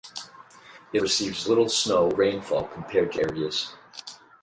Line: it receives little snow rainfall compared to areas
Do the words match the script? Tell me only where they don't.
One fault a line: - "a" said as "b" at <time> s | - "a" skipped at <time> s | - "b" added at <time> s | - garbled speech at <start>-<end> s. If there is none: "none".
none